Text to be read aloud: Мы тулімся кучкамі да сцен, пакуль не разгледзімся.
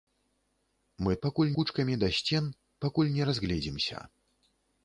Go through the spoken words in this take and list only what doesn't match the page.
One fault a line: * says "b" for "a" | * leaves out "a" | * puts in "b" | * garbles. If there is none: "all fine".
* says "пакуль" for "тулімся"